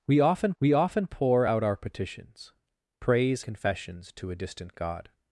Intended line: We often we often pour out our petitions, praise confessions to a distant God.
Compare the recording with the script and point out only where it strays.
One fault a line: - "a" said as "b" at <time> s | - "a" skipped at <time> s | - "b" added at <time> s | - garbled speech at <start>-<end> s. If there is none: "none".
none